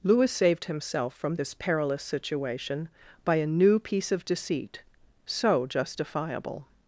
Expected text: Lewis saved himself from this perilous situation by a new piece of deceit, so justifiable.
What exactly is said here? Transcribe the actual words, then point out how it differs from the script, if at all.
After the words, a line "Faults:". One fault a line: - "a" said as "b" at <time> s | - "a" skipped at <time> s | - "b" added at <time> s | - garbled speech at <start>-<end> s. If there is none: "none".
Lewis saved himself from this perilous situation by a new piece of deceit, so justifiable.
Faults:
none